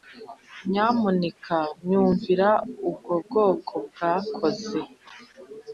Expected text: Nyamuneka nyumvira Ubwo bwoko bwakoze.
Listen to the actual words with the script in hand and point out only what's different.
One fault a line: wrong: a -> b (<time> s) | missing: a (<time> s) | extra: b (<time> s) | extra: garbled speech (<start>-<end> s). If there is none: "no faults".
no faults